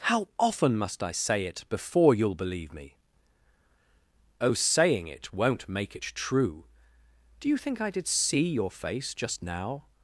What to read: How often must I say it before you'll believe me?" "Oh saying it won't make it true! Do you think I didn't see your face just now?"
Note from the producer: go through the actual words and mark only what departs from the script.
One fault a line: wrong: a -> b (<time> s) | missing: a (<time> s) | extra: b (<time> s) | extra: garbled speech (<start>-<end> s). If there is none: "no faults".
wrong: didn't -> did (7.9 s)